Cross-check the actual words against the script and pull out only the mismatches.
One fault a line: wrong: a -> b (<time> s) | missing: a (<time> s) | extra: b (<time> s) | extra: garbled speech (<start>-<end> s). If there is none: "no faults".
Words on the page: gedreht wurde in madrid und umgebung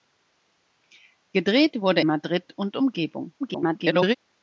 missing: in (2.0 s)
extra: garbled speech (3.4-4.1 s)